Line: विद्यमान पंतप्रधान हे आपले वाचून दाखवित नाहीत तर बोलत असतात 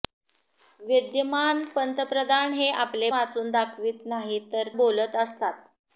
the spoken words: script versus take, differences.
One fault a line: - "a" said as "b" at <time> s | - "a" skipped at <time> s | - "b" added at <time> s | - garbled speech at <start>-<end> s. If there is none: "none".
none